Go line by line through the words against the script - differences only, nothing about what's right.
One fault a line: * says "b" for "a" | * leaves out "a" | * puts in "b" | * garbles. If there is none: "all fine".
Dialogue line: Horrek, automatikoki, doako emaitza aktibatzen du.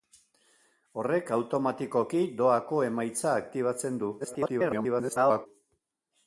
* garbles